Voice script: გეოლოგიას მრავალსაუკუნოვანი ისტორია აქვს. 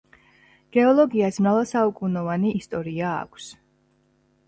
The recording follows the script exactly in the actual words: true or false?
true